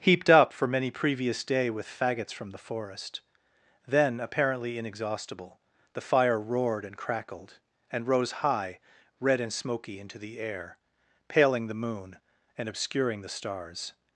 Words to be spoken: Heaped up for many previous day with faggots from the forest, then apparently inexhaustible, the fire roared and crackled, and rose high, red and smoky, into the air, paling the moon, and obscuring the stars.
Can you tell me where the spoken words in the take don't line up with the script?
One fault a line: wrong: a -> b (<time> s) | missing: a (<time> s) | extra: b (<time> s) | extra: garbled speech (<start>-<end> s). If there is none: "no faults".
no faults